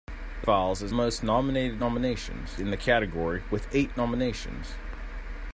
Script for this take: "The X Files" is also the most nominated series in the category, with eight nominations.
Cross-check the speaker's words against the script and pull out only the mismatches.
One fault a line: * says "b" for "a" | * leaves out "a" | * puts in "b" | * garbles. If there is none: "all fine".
* leaves out "X"
* leaves out "also the"
* says "nominations" for "series"